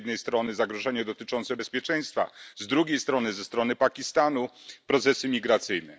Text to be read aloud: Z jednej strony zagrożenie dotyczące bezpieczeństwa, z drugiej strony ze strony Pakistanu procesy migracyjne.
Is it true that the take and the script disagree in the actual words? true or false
false